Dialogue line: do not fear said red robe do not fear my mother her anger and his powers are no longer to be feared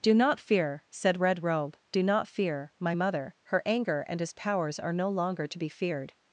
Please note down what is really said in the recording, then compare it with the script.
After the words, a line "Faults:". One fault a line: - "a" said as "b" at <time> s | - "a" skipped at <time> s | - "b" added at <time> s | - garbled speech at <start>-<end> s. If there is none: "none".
do not fear said red robe do not fear my mother her anger and his powers are no longer to be feared
Faults:
none